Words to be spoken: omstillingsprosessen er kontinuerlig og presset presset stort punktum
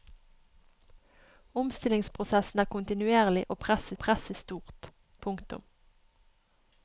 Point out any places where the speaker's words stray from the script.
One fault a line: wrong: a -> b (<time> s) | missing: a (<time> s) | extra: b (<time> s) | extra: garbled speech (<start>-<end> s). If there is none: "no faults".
no faults